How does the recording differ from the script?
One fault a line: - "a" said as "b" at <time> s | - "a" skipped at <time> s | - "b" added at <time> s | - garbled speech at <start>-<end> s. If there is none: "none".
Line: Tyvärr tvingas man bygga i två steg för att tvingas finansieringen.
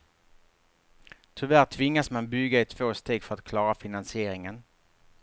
- "tvingas" said as "klara" at 3.4 s